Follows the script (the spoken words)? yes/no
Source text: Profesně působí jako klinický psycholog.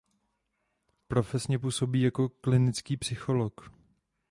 yes